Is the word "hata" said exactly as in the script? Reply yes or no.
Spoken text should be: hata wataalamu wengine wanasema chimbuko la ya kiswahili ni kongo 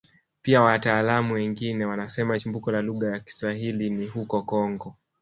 no